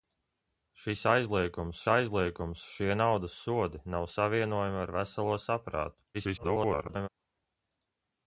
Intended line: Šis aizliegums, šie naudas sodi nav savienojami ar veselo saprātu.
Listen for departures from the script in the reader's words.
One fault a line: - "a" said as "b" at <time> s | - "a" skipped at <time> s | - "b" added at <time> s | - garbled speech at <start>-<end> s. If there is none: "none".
- "aizliegums" added at 1.9 s
- garbled speech at 6.1-7.1 s